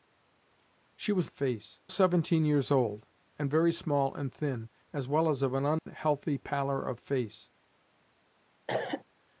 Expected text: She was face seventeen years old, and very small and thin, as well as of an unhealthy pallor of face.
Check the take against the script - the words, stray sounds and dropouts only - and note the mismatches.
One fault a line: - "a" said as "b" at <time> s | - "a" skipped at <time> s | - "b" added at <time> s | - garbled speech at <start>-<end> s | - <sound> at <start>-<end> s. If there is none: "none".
- dropout at 5.8-5.9 s
- cough at 8.7-9.0 s